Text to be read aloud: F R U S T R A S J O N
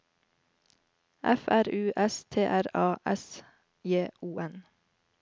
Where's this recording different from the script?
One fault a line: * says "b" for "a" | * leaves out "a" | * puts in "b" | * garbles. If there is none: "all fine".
all fine